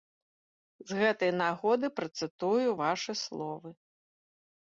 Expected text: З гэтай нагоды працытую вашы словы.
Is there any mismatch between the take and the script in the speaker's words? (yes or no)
no